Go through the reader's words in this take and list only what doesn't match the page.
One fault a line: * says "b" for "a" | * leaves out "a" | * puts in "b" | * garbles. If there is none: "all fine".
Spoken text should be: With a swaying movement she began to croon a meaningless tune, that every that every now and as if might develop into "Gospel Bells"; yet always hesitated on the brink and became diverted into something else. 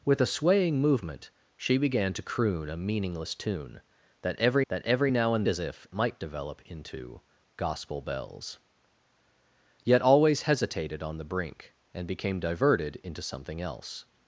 all fine